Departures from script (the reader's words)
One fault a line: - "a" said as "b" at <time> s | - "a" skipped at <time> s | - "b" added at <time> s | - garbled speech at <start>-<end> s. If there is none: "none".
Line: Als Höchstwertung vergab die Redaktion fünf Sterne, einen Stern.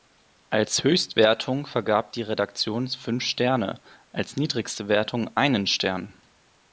- "als niedrigste Wertung" added at 4.1 s